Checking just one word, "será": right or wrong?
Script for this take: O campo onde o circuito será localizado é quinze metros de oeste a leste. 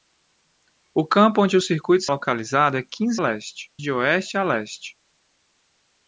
wrong